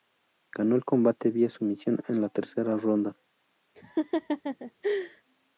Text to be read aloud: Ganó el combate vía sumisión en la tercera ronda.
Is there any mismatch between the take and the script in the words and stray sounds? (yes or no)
yes